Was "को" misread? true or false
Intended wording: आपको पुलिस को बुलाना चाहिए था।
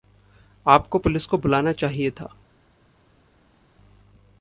false